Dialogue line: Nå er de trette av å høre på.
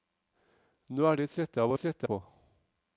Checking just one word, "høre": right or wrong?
wrong